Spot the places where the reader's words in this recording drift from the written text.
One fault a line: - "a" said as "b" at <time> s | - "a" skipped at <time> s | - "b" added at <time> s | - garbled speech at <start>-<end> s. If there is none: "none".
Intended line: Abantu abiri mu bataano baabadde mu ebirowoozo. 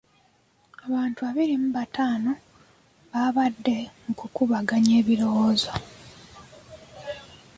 - "kukubaganya" added at 4.2 s